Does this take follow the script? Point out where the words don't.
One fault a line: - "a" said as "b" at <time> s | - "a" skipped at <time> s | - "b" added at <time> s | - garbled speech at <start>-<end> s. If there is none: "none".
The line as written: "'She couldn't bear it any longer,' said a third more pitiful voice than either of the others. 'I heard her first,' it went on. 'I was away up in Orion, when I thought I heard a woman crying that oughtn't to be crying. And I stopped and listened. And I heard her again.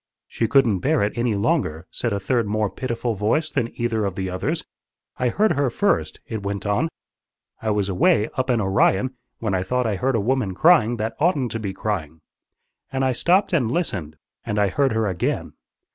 none